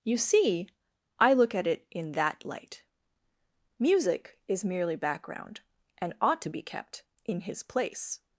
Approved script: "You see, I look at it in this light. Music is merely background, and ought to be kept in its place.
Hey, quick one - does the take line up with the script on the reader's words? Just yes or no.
no